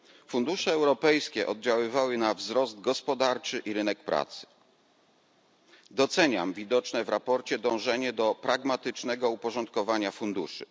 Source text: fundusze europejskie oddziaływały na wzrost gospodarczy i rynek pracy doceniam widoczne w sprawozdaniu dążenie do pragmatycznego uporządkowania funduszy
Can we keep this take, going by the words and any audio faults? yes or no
yes